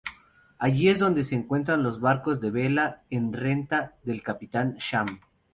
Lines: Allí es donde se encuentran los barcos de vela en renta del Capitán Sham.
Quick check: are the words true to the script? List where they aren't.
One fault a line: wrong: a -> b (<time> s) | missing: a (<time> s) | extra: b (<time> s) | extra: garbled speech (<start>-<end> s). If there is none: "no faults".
no faults